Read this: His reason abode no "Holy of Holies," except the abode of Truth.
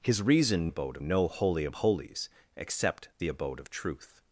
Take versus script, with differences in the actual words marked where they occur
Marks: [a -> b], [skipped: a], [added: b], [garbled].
His reason abode no "Holy of Holies," except the abode of Truth.